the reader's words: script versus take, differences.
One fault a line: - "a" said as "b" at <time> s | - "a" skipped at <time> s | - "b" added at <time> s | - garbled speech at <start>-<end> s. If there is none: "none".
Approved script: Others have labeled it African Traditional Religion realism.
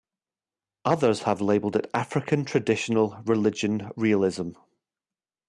none